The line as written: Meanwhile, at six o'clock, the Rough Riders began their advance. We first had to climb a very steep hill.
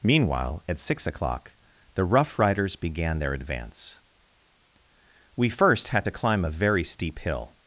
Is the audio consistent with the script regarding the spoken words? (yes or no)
yes